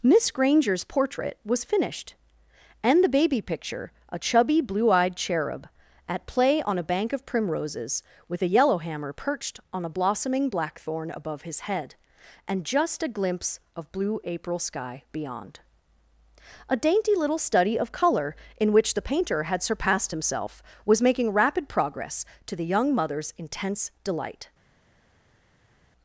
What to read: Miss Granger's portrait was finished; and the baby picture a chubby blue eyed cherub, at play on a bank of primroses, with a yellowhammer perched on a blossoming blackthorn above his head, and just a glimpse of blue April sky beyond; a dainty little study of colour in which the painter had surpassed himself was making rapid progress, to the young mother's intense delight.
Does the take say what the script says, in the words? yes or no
yes